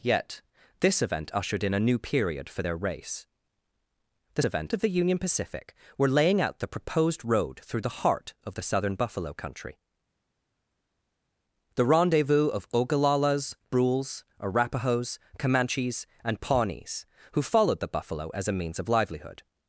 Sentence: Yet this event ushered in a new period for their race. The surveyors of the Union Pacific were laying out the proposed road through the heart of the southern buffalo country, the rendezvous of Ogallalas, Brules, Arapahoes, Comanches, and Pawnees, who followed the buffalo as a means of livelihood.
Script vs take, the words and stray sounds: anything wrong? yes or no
yes